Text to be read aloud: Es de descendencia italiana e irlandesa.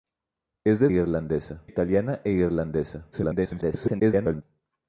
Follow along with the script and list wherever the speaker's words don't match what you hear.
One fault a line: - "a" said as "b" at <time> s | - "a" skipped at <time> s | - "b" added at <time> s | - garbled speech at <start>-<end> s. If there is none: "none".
- "descendencia" said as "irlandesa" at 0.9 s
- garbled speech at 3.1-4.4 s